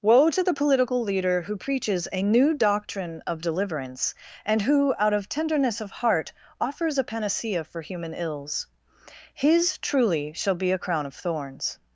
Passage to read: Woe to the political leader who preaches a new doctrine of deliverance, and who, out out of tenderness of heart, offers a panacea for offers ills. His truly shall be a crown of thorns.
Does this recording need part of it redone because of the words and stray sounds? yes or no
yes